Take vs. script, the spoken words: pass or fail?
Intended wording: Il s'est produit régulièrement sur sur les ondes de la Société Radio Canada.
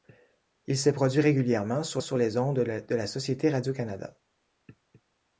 pass